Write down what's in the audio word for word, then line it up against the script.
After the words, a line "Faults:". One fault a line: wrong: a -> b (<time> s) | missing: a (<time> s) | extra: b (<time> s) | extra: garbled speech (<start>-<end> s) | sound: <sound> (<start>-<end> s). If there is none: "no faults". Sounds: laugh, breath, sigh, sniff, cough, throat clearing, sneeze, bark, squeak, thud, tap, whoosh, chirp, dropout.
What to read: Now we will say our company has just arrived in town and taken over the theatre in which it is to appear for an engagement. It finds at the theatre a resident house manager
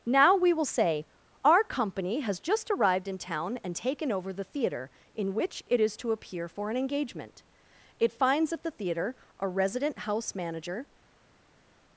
Now we will say our company has just arrived in town and taken over the theatre in which it is to appear for an engagement. It finds at the theatre a resident house manager
Faults:
no faults